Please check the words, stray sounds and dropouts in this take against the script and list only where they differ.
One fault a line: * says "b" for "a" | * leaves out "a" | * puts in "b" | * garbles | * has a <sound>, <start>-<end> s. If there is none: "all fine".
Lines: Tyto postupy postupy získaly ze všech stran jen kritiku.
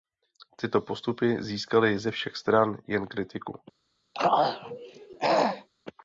* leaves out "postupy"
* has a throat clearing, 4.1-5.7 s